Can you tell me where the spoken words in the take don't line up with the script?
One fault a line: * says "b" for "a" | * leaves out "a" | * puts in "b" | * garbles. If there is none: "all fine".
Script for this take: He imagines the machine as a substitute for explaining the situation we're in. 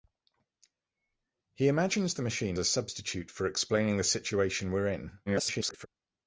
* leaves out "as"
* garbles